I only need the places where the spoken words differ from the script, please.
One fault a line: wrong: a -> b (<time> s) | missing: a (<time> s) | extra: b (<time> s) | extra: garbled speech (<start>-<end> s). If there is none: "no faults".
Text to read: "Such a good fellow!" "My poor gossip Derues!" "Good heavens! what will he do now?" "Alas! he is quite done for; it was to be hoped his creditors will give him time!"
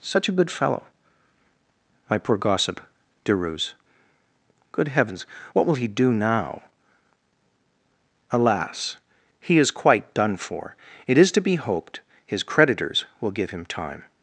wrong: was -> is (11.2 s)